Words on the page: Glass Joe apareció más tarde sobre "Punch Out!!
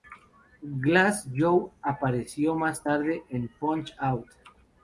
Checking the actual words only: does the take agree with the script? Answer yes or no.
no